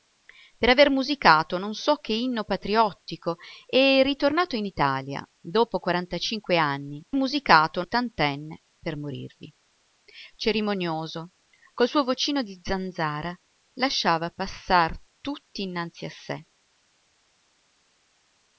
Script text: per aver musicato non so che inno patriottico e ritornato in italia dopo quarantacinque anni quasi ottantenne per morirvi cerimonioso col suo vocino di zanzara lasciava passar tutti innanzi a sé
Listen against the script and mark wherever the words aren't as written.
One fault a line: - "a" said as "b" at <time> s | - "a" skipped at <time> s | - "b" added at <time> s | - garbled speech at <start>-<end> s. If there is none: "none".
- "quasi" said as "musicato" at 7.1 s